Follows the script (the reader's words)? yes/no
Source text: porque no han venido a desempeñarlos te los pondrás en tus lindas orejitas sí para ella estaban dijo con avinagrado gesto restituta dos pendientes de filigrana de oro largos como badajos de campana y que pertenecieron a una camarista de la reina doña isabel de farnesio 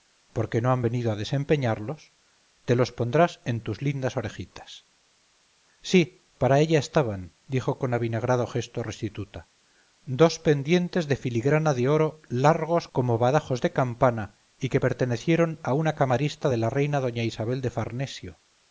yes